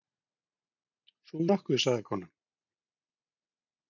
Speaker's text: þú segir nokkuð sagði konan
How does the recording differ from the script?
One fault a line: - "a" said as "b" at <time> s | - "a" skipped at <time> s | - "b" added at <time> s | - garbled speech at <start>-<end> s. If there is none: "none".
- "segir" skipped at 1.4 s